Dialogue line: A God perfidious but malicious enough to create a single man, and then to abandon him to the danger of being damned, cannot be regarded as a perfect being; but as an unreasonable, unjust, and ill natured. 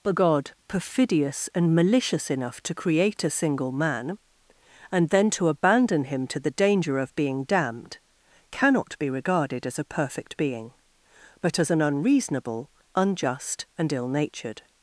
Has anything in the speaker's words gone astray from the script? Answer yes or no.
yes